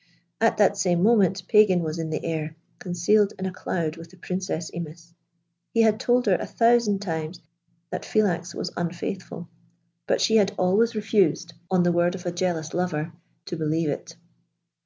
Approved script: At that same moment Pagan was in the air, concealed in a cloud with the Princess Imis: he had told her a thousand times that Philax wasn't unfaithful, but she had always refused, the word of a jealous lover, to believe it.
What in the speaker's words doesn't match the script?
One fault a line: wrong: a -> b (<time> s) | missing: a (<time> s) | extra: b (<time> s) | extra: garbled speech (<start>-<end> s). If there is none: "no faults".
wrong: wasn't -> was (8.6 s)
extra: on (11.7 s)